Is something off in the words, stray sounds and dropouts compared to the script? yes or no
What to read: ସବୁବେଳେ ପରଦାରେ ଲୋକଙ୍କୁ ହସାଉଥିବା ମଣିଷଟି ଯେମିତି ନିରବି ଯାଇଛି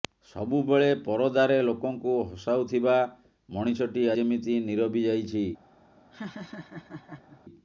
yes